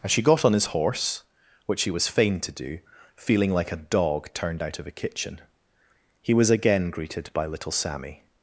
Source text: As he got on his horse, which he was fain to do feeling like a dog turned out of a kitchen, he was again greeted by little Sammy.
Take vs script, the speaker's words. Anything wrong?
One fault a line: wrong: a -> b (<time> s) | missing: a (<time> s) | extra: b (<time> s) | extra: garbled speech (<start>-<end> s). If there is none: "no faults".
wrong: he -> she (0.1 s)